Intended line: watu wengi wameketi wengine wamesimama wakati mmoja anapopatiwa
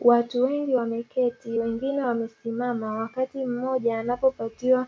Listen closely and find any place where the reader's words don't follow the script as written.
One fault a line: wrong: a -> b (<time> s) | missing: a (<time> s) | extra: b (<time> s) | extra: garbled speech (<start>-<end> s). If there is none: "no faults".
no faults